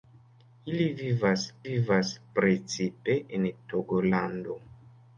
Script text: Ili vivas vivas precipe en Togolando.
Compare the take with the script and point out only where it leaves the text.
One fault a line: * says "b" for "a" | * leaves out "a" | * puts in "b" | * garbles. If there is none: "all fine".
all fine